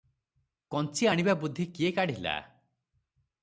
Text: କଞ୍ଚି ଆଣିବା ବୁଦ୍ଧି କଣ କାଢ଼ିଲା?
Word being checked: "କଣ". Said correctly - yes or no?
no